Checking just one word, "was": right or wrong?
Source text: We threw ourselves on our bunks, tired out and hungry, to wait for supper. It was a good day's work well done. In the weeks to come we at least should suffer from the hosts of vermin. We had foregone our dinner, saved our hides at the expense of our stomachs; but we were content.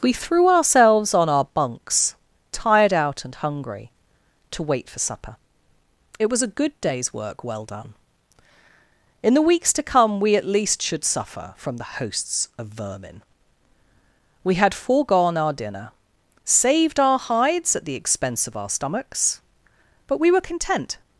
right